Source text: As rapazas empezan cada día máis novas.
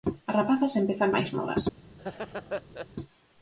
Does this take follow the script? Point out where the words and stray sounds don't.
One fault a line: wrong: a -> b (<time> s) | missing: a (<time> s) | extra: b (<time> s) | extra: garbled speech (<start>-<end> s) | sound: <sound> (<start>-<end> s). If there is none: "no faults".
missing: cada día (1.1 s)
sound: laugh (2.0-2.9 s)